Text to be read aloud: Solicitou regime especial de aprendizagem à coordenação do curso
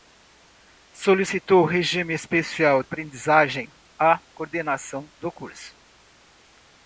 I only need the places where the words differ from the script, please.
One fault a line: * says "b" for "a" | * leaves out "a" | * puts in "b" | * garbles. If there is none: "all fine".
* leaves out "de"